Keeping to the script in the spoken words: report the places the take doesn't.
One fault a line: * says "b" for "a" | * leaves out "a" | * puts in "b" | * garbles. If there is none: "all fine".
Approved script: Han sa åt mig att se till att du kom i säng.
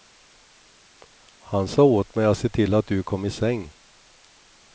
all fine